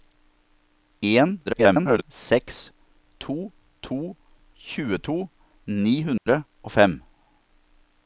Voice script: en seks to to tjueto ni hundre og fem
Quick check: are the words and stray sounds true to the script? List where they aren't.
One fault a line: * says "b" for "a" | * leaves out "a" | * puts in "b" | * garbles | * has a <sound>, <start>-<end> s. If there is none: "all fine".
* garbles
* has a dropout, 6.2-6.3 s